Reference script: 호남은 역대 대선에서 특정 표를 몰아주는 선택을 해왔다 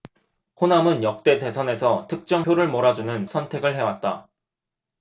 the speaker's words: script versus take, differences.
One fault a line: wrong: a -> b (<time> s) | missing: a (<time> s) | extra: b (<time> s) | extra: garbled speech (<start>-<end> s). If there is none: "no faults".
no faults